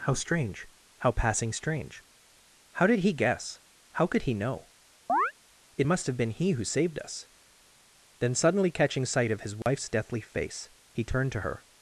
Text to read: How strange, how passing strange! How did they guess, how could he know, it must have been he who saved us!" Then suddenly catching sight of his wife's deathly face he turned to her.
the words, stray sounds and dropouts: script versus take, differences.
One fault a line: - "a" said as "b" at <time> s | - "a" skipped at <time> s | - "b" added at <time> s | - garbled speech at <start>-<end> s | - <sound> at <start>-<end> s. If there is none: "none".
- "they" said as "he" at 3.0 s
- chirp at 5.1-5.3 s
- dropout at 9.6-9.7 s